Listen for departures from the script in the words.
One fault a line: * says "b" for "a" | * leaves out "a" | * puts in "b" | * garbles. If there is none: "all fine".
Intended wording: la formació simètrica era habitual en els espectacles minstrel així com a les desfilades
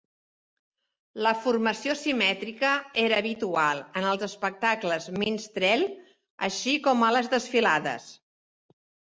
all fine